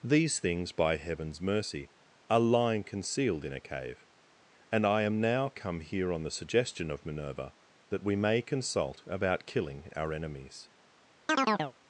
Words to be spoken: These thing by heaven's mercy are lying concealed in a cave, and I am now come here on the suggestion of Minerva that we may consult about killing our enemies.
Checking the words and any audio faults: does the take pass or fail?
fail